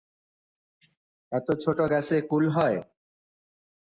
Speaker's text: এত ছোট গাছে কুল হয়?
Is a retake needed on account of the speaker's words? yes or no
no